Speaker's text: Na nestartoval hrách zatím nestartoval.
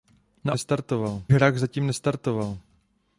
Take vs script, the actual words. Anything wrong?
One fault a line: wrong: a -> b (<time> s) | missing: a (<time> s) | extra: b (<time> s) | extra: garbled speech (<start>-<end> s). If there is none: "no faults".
no faults